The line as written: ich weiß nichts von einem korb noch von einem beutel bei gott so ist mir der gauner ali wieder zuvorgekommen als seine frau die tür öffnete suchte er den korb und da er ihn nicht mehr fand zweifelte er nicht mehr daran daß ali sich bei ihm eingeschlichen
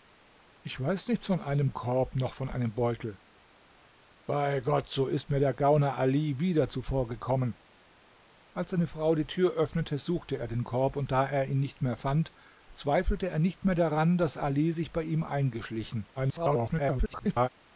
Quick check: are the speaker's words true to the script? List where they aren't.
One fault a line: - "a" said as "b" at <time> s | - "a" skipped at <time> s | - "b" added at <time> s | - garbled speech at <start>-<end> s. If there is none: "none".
- garbled speech at 16.1-17.5 s